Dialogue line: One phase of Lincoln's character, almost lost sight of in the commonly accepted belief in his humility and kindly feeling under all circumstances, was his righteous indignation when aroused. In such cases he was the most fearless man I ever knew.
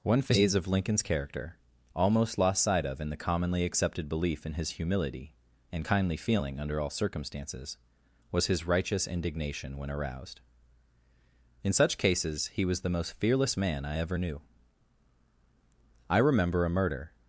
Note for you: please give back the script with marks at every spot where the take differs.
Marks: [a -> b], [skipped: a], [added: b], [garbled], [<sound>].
One phase of Lincoln's character, almost lost sight of in the commonly accepted belief in his humility and kindly feeling under all circumstances, was his righteous indignation when aroused. In such cases he was the most fearless man I ever knew. [added: I remember a murder]